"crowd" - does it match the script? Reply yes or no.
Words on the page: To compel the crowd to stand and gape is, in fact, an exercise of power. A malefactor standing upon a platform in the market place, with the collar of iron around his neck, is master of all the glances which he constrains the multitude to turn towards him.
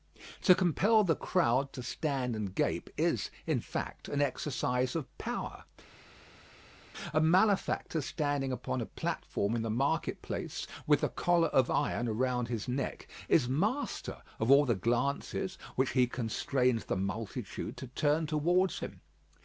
yes